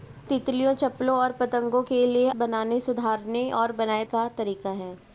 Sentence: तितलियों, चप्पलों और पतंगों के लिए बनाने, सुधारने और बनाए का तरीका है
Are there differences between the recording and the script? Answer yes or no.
no